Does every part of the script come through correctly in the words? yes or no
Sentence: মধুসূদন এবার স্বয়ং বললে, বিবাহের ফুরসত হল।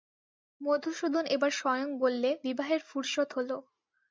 yes